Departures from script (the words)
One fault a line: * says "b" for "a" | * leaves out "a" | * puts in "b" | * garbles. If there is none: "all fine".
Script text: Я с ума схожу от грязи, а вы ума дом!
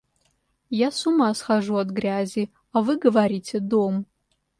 * says "говорите" for "ума"